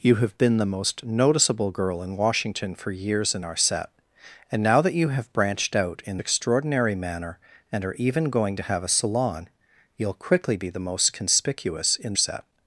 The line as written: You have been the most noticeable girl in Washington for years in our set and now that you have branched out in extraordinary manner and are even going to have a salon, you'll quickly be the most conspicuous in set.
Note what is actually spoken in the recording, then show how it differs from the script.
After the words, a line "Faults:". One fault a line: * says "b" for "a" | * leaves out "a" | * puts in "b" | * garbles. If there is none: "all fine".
You have been the most noticeable girl in Washington for years in our set and now that you have branched out in extraordinary manner and are even going to have a salon, you'll quickly be the most conspicuous in set.
Faults:
all fine